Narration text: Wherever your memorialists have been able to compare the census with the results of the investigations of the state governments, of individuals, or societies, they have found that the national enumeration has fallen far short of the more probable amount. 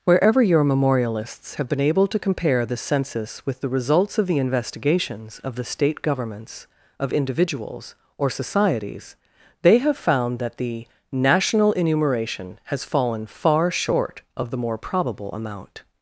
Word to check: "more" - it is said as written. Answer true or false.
true